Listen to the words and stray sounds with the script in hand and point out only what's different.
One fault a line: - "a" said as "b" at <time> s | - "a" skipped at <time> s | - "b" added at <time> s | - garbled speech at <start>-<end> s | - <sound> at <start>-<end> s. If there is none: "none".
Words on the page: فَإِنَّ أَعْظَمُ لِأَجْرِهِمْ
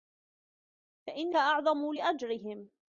none